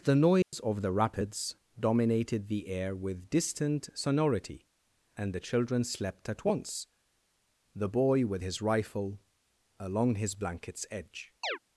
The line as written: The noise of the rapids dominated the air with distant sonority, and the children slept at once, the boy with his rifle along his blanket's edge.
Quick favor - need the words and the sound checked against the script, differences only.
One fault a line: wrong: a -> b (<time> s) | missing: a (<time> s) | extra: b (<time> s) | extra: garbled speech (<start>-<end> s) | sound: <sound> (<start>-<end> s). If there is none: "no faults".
sound: dropout (0.4-0.5 s)
sound: chirp (11.4-11.6 s)